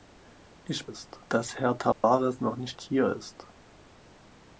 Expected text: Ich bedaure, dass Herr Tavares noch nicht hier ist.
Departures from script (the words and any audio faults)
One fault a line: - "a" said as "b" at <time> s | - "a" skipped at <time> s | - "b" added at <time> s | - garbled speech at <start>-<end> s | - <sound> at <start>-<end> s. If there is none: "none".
- "bedaure" said as "ist" at 0.9 s
- dropout at 1.9-2.0 s